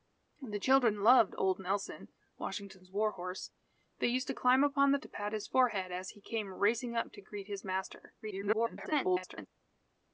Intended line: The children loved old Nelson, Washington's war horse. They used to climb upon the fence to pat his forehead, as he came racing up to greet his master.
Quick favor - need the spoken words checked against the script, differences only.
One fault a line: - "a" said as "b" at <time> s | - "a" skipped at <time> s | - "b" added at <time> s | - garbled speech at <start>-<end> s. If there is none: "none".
- "fence" skipped at 5.0 s
- garbled speech at 8.2-9.5 s